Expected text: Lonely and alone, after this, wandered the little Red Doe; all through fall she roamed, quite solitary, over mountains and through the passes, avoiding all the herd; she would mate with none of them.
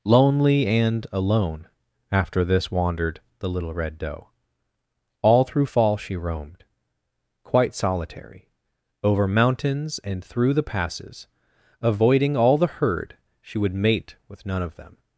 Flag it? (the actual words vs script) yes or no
no